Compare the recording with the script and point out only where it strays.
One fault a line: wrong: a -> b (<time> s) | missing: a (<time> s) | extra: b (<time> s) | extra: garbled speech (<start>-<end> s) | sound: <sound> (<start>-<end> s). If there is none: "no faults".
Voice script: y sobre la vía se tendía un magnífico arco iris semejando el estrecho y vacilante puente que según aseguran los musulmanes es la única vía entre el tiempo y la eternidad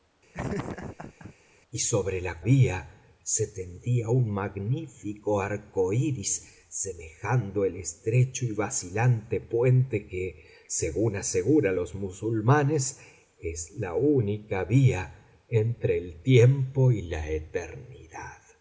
sound: laugh (0.3-1.3 s)